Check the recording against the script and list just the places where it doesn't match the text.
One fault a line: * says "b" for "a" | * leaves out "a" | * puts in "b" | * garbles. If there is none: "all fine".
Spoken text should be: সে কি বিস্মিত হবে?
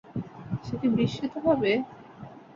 all fine